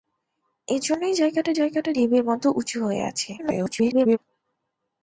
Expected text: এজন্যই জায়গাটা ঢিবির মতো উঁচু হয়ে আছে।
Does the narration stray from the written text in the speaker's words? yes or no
yes